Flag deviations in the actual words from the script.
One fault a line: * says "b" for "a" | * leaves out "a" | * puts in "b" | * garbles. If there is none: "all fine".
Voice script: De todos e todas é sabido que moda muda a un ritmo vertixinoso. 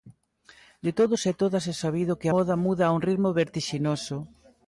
all fine